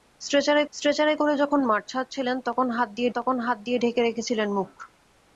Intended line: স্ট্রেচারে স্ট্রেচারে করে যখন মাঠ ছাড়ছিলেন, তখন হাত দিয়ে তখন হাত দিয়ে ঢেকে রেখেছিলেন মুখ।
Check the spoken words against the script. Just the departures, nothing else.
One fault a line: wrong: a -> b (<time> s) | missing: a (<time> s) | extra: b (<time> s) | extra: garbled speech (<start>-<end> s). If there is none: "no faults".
no faults